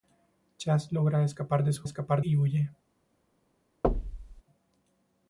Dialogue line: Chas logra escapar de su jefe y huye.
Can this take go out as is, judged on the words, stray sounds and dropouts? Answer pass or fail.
fail